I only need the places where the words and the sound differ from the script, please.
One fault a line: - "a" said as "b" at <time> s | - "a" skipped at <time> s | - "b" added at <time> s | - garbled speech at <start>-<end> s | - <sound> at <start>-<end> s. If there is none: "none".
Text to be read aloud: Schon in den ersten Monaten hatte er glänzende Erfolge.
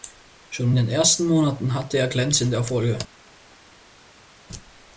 none